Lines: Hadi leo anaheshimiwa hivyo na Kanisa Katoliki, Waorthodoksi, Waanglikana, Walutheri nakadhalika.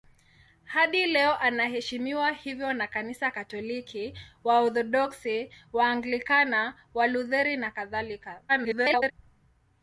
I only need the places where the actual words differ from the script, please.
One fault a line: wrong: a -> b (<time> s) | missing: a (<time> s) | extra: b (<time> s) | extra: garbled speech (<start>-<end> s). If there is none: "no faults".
extra: garbled speech (8.5-9.1 s)